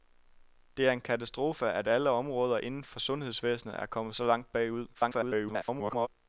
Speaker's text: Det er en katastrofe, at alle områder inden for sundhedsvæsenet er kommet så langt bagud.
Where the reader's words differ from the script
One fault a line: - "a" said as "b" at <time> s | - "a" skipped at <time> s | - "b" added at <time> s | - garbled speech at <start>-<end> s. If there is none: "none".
- garbled speech at 4.9-6.1 s